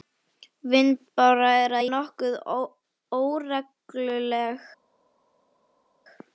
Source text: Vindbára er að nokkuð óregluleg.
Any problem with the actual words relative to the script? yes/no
no